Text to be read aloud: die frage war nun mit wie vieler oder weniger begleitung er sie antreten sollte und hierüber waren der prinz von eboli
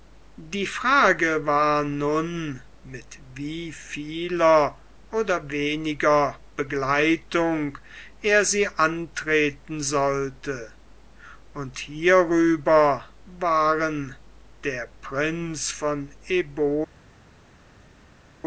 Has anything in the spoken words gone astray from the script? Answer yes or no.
no